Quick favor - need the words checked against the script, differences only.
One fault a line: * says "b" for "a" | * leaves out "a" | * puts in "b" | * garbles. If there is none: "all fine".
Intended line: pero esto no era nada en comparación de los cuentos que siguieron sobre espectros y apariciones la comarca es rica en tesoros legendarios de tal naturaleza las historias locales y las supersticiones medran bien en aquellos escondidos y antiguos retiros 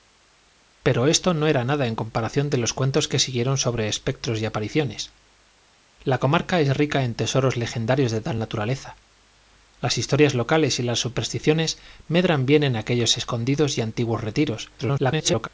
* garbles